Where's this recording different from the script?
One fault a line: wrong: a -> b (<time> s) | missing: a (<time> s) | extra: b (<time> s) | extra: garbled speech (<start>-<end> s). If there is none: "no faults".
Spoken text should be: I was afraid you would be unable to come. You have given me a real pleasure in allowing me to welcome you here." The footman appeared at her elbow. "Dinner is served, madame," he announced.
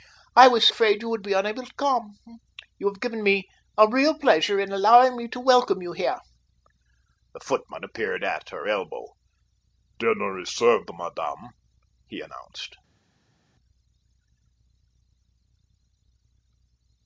no faults